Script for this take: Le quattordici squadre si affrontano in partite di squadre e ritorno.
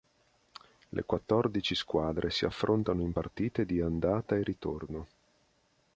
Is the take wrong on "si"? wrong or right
right